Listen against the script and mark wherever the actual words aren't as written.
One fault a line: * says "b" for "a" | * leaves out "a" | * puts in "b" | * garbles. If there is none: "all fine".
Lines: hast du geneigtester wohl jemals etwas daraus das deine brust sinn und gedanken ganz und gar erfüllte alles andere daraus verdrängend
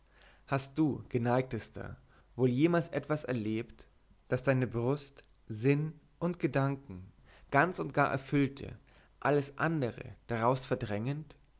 * says "erlebt" for "daraus"